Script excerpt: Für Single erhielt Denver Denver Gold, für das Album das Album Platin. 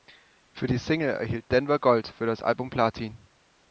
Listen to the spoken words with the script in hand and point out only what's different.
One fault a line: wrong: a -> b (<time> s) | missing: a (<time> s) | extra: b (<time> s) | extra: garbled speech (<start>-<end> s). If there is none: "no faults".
extra: die (0.7 s)
missing: Denver (1.8 s)
missing: das Album (2.7 s)